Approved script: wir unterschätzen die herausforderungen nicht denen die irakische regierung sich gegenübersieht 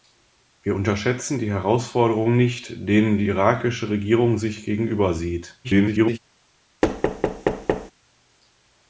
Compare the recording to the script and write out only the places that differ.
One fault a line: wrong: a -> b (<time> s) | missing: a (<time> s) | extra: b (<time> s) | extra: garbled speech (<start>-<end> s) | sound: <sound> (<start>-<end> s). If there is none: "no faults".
extra: garbled speech (5.6-6.2 s)
sound: thud (6.8-7.9 s)